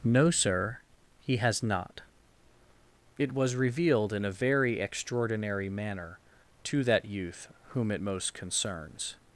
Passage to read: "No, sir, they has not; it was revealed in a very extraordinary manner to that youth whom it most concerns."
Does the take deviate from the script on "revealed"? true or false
false